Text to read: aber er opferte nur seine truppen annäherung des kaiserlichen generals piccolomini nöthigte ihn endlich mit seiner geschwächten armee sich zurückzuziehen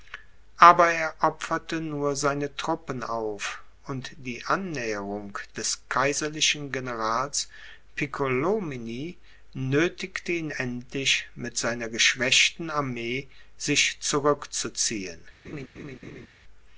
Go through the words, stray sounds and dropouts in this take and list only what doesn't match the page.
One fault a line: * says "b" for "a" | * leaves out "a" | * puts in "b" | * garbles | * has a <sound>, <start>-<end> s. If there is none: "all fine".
* puts in "auf und die"
* has a laugh, 15.4-16.3 s